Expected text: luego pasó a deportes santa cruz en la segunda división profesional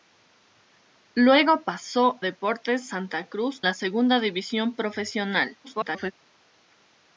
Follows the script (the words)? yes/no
no